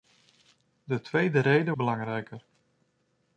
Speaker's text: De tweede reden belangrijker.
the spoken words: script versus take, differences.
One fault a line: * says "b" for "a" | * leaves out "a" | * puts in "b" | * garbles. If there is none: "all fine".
all fine